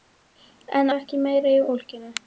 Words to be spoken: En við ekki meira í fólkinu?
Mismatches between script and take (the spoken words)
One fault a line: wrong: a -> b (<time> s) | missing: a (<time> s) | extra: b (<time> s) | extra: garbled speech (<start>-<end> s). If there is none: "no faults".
no faults